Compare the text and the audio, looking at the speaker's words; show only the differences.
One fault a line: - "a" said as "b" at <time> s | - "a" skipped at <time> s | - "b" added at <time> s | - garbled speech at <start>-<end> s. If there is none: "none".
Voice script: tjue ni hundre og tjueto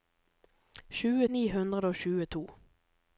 none